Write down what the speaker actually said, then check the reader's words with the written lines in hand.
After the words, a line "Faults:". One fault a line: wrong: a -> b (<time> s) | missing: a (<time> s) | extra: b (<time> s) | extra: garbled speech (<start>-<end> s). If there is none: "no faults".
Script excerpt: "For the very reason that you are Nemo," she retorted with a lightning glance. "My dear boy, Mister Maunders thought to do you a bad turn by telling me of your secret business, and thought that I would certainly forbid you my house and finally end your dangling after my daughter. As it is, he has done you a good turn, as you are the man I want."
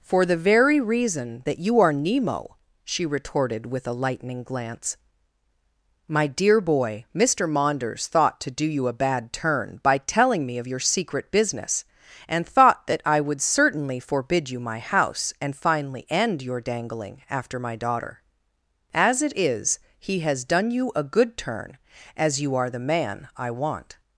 "For the very reason that you are Nemo," she retorted with a lightning glance. "My dear boy, Mister Maunders thought to do you a bad turn by telling me of your secret business, and thought that I would certainly forbid you my house and finally end your dangling after my daughter. As it is, he has done you a good turn, as you are the man I want."
Faults:
no faults